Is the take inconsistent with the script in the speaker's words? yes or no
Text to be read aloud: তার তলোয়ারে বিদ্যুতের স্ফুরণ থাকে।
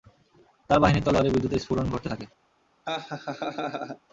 yes